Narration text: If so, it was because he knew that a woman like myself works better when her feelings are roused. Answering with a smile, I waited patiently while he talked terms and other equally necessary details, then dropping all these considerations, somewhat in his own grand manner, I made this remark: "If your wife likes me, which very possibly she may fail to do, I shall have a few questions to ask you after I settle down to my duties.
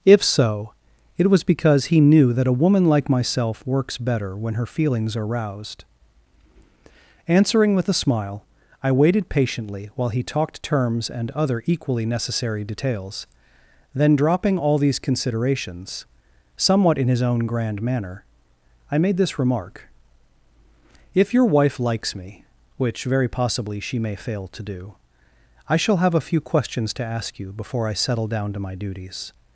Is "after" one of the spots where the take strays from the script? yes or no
yes